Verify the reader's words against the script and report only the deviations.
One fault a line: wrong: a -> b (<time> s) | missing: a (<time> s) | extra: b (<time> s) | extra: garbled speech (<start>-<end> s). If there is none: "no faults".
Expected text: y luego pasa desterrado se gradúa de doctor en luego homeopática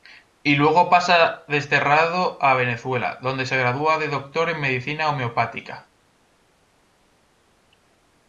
extra: a venezuela donde (2.4 s)
wrong: luego -> medicina (4.6 s)